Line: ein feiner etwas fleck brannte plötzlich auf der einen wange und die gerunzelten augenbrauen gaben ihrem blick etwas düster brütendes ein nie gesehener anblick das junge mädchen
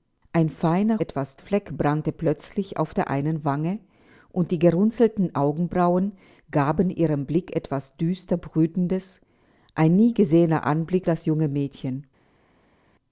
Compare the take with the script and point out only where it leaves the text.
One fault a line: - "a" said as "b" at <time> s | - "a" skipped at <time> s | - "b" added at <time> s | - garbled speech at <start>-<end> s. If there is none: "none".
none